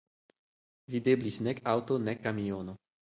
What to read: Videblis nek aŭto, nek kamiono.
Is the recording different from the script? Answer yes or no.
no